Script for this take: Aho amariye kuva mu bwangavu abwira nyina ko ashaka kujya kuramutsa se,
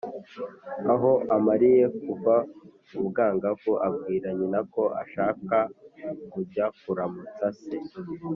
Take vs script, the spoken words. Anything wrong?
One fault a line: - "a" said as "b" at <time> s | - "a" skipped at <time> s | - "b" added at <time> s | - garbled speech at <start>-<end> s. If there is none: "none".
none